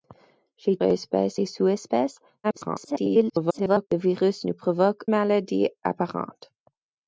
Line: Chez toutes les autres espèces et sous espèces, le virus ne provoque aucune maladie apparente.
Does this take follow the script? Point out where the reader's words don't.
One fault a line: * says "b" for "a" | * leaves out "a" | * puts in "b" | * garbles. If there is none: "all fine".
* leaves out "toutes les autres"
* garbles
* leaves out "aucune"